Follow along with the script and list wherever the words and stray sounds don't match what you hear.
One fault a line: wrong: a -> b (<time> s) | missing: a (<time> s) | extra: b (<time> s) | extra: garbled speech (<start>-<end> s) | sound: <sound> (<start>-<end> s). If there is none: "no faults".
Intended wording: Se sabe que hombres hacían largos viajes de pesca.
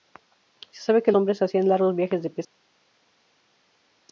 no faults